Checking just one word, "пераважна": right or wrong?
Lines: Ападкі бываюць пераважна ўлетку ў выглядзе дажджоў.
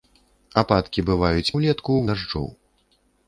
wrong